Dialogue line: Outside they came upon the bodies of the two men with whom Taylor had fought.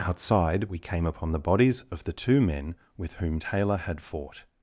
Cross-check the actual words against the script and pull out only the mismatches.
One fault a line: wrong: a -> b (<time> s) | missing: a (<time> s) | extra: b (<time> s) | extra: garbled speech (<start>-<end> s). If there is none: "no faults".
wrong: they -> we (0.6 s)